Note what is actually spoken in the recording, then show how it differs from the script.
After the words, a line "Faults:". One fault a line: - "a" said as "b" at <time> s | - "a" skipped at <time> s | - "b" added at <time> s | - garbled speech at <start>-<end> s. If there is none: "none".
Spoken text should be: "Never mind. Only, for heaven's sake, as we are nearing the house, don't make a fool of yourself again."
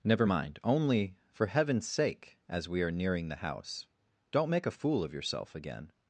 "Never mind. Only, for heaven's sake, as we are nearing the house, don't make a fool of yourself again."
Faults:
none